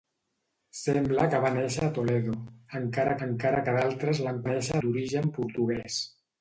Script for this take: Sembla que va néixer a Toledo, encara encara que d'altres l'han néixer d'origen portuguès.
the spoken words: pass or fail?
pass